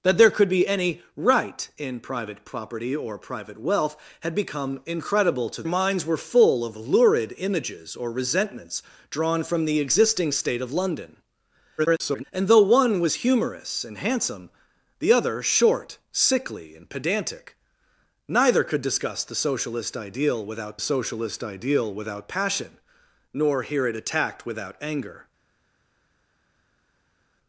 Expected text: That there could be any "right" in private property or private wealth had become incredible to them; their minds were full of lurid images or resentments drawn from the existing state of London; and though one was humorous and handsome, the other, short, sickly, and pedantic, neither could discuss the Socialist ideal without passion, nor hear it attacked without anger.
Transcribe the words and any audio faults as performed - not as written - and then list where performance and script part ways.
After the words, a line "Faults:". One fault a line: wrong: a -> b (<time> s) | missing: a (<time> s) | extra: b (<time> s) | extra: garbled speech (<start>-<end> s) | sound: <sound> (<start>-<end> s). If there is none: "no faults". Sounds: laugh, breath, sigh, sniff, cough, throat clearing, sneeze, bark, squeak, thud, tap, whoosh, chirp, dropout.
That there could be any "right" in private property or private wealth had become incredible to minds were full of lurid images or resentments drawn from the existing state of London; [garbled] and though one was humorous and handsome, the other, short, sickly, and pedantic, neither could discuss the Socialist ideal without Socialist ideal without passion, nor hear it attacked without anger.
Faults:
missing: them their (5.6 s)
extra: garbled speech (11.8-12.2 s)
extra: Socialist ideal without (20.8 s)